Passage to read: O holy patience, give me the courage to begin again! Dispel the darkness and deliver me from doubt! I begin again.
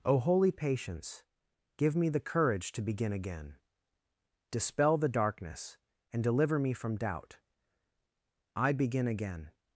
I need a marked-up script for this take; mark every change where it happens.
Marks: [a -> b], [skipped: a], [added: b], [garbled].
O holy patience, give me the courage to begin again! Dispel the darkness and deliver me from doubt! I begin again.